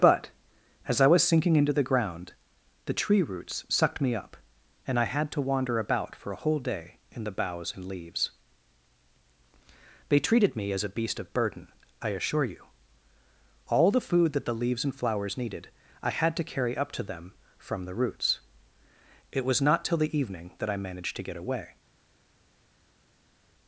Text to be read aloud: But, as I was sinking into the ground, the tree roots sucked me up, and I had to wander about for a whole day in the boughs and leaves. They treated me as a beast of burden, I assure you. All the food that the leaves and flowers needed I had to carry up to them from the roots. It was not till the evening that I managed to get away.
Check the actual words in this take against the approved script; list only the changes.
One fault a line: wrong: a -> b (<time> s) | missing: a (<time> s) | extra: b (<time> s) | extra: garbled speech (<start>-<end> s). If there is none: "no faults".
no faults